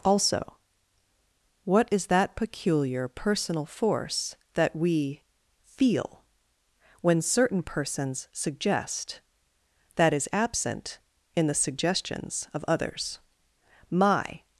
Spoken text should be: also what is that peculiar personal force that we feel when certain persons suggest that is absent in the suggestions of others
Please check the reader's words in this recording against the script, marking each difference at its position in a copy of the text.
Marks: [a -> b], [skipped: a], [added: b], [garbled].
also what is that peculiar personal force that we feel when certain persons suggest that is absent in the suggestions of others [added: my]